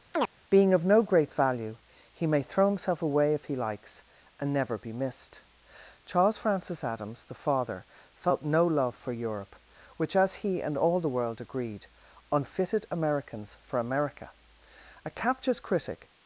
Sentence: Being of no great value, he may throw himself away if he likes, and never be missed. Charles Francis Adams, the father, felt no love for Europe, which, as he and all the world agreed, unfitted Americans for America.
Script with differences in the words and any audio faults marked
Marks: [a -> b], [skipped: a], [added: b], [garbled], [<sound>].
[chirp] Being of no great value, he may throw himself away if he likes, and never be missed. Charles Francis Adams, the father, felt no love for Europe, which, as he and all the world agreed, unfitted Americans for America. [added: A captious critic]